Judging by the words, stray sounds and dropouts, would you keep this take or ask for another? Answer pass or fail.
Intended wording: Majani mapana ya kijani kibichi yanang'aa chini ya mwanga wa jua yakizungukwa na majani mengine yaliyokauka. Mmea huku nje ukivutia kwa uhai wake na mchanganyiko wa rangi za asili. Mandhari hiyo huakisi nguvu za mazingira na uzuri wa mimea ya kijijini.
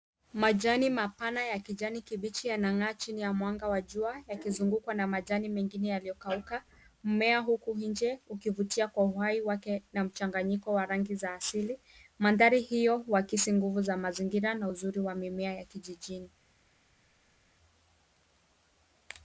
pass